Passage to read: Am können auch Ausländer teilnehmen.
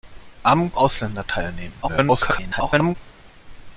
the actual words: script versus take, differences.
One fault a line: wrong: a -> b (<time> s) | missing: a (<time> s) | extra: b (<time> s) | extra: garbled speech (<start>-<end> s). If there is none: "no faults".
missing: können auch (0.7 s)
extra: garbled speech (1.8-3.0 s)